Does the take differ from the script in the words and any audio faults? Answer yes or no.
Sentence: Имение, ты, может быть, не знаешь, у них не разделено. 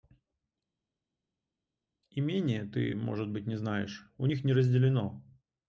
no